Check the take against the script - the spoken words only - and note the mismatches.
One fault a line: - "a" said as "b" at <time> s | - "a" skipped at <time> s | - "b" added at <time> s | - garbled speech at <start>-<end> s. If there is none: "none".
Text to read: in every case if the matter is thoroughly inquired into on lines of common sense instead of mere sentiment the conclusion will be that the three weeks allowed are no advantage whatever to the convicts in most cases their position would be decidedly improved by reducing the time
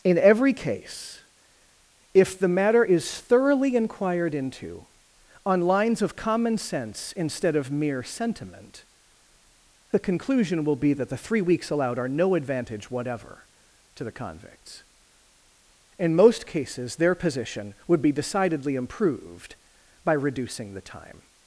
none